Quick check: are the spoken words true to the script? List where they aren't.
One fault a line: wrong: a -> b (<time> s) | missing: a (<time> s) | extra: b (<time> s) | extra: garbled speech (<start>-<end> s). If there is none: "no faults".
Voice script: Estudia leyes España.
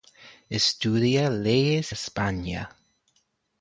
no faults